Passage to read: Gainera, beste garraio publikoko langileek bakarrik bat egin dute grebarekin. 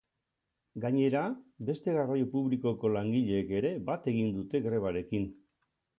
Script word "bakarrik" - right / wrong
wrong